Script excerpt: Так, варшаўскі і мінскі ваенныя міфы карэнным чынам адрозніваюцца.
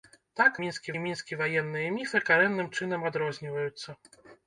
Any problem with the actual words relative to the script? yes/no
yes